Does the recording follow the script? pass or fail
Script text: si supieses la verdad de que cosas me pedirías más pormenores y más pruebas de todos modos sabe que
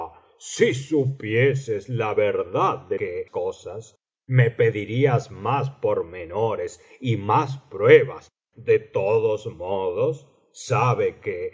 pass